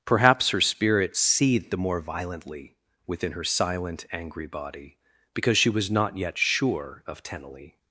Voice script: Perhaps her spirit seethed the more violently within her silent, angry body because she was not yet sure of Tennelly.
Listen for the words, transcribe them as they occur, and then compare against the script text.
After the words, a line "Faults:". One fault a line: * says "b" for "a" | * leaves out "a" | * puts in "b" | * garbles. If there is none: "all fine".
Perhaps her spirit seethed the more violently within her silent, angry body because she was not yet sure of Tennelly.
Faults:
all fine